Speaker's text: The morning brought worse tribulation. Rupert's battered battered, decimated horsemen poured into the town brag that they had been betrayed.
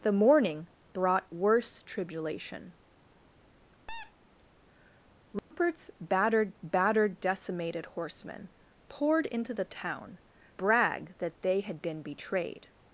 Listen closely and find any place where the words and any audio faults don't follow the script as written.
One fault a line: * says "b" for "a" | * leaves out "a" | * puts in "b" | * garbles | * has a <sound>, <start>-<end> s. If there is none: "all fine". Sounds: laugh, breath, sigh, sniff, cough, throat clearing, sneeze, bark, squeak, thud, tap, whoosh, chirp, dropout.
* has a squeak, 3.9-4.1 s
* has a dropout, 5.4-5.5 s